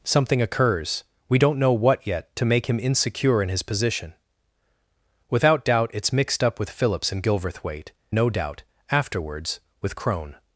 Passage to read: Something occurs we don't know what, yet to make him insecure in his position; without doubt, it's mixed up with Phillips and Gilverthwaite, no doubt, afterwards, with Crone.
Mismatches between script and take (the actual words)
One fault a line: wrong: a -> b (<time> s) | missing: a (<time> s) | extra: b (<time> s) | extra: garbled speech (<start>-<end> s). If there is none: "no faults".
no faults